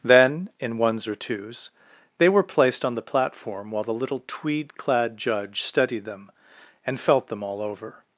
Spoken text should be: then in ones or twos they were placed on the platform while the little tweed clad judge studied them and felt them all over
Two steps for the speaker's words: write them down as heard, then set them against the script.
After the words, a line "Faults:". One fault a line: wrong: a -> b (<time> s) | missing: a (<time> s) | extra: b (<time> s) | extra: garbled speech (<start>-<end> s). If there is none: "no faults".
then in ones or twos they were placed on the platform while the little tweed clad judge studied them and felt them all over
Faults:
no faults